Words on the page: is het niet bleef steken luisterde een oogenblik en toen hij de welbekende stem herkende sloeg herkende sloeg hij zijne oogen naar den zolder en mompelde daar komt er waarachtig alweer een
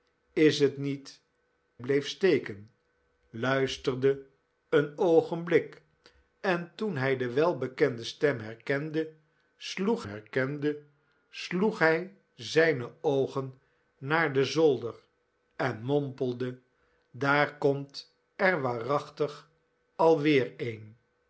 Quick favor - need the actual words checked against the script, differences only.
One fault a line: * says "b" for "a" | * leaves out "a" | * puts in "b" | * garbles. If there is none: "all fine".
all fine